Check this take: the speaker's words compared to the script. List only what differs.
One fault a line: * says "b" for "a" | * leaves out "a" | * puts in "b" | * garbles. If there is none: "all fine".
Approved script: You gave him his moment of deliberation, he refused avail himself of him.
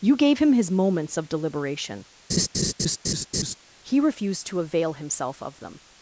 * says "moments" for "moment"
* puts in "to"
* says "them" for "him"